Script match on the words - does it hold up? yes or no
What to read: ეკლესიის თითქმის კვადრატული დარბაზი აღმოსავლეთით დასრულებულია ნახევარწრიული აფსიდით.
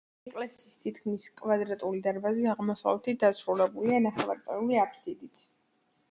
yes